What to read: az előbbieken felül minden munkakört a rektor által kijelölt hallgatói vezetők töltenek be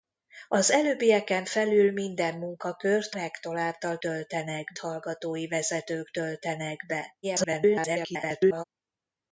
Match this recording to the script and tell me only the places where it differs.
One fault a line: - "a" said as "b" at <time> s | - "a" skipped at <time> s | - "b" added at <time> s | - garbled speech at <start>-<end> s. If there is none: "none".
- "a" skipped at 3.1 s
- "kijelölt" said as "töltenek" at 4.0 s
- garbled speech at 7.2-8.6 s